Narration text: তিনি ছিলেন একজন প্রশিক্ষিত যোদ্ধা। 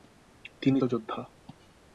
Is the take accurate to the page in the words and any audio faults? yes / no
no